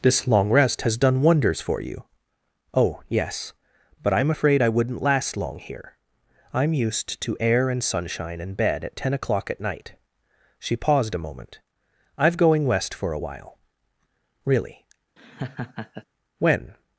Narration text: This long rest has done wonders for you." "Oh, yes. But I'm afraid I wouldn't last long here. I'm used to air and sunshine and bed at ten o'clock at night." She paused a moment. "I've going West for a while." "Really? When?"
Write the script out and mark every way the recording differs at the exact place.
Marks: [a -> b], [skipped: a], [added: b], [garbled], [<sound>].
This long rest has done wonders for you." "Oh, yes. But I'm afraid I wouldn't last long here. I'm used to air and sunshine and bed at ten o'clock at night." She paused a moment. "I've going West for a while." "Really? [laugh] When?"